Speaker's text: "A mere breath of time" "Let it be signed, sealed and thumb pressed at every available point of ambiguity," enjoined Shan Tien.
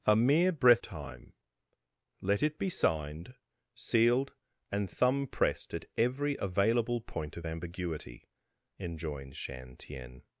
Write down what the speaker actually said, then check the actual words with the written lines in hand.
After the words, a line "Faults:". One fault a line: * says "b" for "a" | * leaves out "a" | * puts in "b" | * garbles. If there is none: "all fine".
"A mere breath time" "Let it be signed, sealed and thumb pressed at every available point of ambiguity," enjoined Shan Tien.
Faults:
* leaves out "of"